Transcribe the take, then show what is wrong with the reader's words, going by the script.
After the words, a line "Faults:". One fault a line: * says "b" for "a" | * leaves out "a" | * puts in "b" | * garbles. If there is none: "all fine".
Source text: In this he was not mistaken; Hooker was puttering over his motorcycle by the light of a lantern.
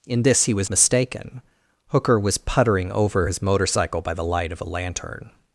In this he was mistaken; Hooker was puttering over his motorcycle by the light of a lantern.
Faults:
* leaves out "not"